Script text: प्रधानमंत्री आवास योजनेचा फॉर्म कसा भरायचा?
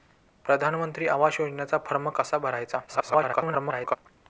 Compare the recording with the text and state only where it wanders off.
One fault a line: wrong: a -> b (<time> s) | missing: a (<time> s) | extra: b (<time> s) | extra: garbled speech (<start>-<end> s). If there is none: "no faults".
extra: garbled speech (2.9-4.0 s)